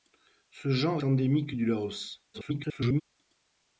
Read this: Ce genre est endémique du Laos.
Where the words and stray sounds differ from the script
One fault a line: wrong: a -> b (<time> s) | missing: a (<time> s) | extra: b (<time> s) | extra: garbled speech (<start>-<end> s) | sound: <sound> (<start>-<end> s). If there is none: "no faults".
missing: est (1.0 s)
extra: garbled speech (2.3-3.0 s)